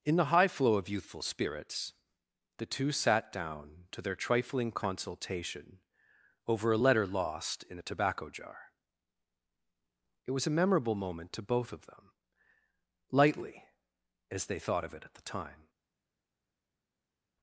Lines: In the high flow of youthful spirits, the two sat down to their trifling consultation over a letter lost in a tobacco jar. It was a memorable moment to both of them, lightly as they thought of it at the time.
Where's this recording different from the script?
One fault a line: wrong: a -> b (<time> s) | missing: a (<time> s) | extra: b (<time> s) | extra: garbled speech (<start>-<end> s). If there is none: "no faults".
no faults